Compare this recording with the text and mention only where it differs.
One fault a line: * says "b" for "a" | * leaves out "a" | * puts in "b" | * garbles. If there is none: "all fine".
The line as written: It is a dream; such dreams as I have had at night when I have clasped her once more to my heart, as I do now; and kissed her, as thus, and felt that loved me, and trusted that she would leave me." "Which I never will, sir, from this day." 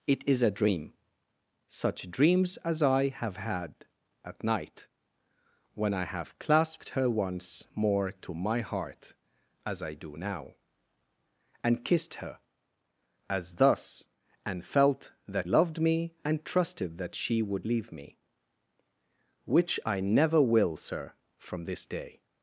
all fine